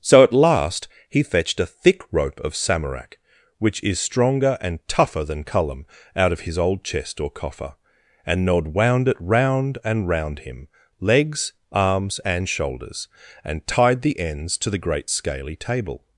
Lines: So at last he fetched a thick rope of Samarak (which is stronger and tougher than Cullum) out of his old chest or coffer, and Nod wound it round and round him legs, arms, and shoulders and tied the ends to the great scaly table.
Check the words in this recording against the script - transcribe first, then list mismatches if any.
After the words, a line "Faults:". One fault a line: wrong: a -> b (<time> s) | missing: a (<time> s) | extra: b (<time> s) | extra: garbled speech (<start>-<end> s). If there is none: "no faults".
So at last he fetched a thick rope of Samarak (which is stronger and tougher than Cullum) out of his old chest or coffer, and Nod wound it round and round him legs, arms, and shoulders and tied the ends to the great scaly table.
Faults:
no faults